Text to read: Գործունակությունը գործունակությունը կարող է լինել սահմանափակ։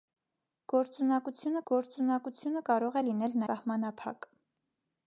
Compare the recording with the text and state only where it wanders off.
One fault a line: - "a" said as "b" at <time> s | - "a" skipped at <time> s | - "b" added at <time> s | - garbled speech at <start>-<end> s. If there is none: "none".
none